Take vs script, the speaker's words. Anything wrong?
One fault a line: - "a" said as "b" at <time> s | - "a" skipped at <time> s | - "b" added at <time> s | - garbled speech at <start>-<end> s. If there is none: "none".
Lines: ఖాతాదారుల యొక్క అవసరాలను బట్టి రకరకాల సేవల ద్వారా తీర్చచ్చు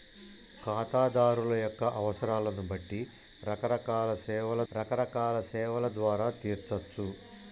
- "రకరకాల సేవల" added at 4.7 s